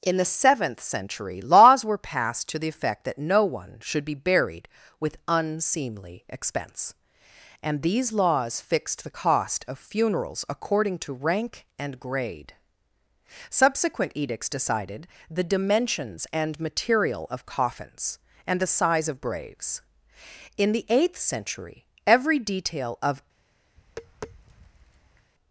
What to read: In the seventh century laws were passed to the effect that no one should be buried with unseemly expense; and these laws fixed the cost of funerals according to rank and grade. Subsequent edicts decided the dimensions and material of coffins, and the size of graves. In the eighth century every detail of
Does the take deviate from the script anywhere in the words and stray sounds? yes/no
yes